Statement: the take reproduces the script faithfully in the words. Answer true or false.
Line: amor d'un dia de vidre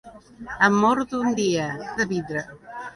true